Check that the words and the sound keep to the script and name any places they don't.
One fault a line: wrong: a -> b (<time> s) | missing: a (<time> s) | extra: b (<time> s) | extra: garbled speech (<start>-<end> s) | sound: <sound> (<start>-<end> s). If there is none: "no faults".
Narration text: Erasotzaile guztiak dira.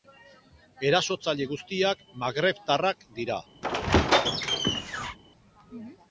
extra: magrebtarrak (2.2 s)
sound: squeak (3.6-5.2 s)